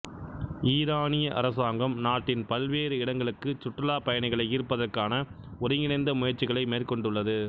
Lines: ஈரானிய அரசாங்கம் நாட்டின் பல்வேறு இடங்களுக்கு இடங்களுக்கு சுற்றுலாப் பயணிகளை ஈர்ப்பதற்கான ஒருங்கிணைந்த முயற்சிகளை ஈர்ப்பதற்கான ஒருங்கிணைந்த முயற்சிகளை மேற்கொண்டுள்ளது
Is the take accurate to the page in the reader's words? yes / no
no